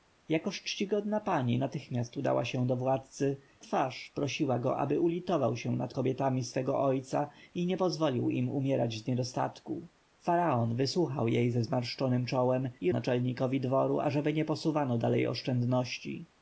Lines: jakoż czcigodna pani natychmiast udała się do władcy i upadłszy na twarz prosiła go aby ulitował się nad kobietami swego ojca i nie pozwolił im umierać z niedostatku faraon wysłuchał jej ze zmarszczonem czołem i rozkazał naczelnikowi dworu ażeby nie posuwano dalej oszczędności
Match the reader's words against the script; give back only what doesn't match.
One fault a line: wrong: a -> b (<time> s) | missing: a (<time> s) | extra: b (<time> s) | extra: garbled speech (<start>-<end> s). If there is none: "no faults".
missing: i upadłszy na (3.4 s)
missing: rozkazał (12.9 s)